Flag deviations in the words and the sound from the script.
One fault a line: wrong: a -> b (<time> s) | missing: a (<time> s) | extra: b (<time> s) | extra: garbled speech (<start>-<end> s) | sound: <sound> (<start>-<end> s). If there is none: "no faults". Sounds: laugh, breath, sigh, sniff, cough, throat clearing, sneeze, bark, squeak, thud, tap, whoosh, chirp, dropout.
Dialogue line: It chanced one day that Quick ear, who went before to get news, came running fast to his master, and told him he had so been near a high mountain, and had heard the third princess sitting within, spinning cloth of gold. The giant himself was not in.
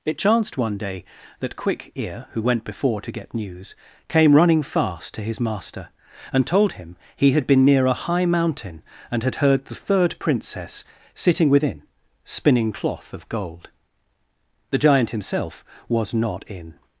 missing: so (7.5 s)